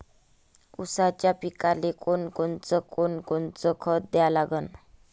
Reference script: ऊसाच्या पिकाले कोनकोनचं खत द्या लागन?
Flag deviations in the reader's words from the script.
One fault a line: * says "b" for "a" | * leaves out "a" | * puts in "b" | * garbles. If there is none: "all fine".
* puts in "कोनकोनचं"